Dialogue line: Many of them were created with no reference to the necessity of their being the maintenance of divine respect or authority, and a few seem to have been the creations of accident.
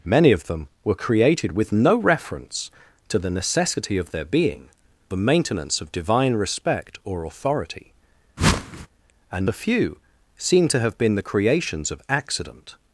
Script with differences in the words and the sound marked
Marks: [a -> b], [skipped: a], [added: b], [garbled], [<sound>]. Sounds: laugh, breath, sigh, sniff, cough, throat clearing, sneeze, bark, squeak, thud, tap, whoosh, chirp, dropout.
Many of them were created with no reference to the necessity of their being the maintenance of divine respect or authority, [whoosh] and a few seem to have been the creations of accident.